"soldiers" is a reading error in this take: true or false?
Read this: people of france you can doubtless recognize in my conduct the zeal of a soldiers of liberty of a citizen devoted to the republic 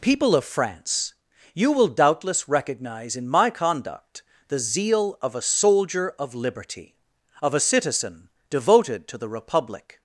true